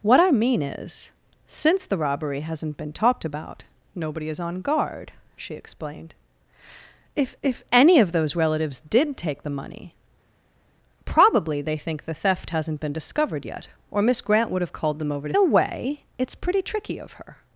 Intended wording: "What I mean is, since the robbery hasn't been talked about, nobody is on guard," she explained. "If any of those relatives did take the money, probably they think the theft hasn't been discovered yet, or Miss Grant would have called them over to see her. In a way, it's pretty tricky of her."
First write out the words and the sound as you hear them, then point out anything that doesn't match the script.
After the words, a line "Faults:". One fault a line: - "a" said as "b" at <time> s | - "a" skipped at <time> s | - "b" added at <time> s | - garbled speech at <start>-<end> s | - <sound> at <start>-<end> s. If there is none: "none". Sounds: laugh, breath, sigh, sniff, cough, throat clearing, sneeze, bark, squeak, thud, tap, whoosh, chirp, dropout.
"What I mean is, since the robbery hasn't been talked about, nobody is on guard," she explained. "If if any of those relatives did take the money, probably they think the theft hasn't been discovered yet, or Miss Grant would have called them over to a way, it's pretty tricky of her."
Faults:
- "if" added at 7.4 s
- "see her In" skipped at 15.3 s